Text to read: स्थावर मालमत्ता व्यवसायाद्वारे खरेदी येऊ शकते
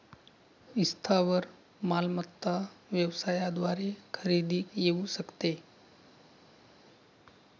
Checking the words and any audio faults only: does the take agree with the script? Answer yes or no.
yes